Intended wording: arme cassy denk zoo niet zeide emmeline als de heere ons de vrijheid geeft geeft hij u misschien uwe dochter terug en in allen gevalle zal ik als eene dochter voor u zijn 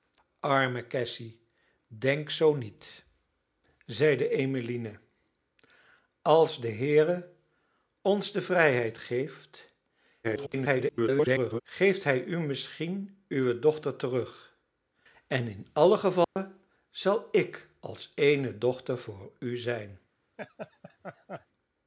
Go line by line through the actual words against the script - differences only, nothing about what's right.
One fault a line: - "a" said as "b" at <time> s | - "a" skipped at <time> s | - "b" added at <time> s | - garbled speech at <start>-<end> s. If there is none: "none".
- garbled speech at 10.2-11.6 s